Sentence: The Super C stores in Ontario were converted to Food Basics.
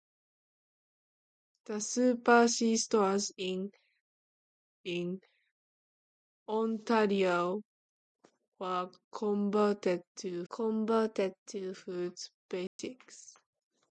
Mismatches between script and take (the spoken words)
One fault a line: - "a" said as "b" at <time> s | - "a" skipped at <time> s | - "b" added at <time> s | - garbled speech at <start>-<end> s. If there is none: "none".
- "in" added at 4.8 s
- "converted to" added at 10.5 s